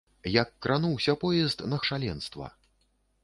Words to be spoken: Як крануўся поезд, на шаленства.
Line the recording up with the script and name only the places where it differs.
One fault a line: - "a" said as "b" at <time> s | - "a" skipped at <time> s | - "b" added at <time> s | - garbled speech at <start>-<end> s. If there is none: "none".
none